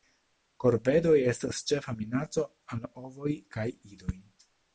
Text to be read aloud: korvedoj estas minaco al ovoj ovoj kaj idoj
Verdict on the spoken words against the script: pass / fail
fail